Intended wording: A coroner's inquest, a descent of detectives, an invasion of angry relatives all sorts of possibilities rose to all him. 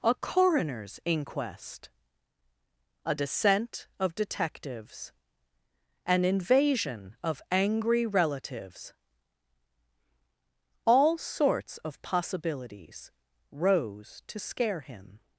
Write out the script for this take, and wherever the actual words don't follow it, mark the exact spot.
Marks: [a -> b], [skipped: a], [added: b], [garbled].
A coroner's inquest, a descent of detectives, an invasion of angry relatives all sorts of possibilities rose to [all -> scare] him.